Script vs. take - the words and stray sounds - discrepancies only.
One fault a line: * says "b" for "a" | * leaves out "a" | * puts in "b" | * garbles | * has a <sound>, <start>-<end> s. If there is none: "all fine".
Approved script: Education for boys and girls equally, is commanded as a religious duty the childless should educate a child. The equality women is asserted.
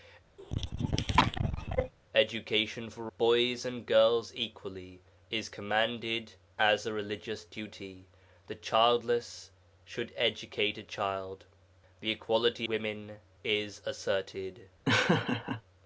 * has a cough, 0.4-1.9 s
* has a laugh, 14.9-15.6 s